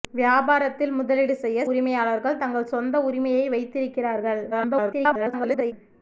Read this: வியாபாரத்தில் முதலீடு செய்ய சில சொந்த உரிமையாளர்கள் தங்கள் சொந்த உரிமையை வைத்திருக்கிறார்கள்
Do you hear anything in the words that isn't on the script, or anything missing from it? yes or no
yes